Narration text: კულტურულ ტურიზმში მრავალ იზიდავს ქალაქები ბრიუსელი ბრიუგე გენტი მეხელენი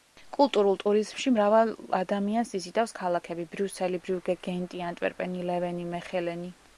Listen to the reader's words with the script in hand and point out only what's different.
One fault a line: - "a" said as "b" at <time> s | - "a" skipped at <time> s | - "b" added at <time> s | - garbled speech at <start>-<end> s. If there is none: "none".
- "ადამიანს" added at 2.0 s
- "ანტვერპენი ლევენი" added at 4.9 s